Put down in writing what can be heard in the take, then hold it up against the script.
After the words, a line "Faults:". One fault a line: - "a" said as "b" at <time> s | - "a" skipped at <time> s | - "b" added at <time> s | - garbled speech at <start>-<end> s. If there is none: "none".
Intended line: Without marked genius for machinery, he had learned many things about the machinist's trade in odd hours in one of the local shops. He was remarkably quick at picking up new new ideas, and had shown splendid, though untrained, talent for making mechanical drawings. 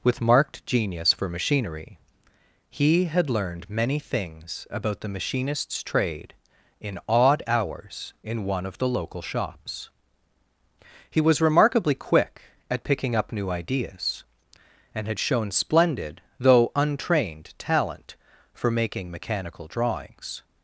With marked genius for machinery, he had learned many things about the machinist's trade in odd hours in one of the local shops. He was remarkably quick at picking up new ideas, and had shown splendid, though untrained, talent for making mechanical drawings.
Faults:
- "Without" said as "With" at 0.0 s
- "new" skipped at 13.5 s